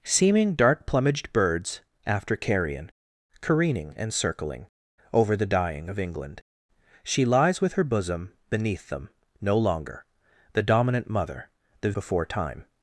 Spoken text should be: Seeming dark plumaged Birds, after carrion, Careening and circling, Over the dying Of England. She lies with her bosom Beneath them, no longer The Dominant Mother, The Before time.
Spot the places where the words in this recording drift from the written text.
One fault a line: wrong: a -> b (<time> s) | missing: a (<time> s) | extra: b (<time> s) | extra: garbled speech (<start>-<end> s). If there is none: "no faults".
no faults